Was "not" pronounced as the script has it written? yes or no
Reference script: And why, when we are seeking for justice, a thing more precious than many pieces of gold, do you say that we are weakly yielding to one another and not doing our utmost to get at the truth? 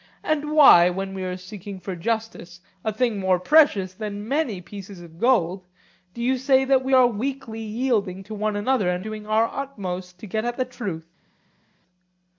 no